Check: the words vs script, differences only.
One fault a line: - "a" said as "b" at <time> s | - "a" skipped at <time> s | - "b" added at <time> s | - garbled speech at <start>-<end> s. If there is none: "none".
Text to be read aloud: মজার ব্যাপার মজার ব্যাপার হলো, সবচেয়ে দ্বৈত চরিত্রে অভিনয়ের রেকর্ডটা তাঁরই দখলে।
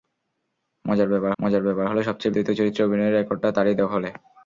none